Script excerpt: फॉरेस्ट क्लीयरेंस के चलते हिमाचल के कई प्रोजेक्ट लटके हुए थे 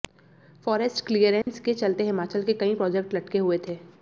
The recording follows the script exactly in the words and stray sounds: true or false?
false